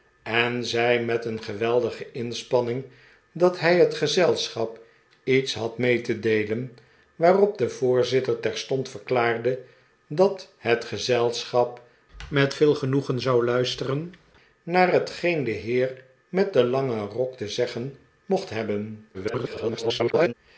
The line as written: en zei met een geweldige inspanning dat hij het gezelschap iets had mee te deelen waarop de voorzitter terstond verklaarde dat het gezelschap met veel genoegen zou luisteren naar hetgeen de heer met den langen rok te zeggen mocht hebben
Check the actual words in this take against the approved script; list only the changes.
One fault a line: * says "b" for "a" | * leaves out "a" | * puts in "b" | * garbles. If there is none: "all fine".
* garbles